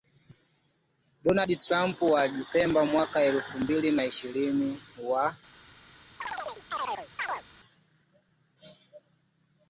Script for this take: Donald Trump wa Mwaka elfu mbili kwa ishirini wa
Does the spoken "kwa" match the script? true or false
false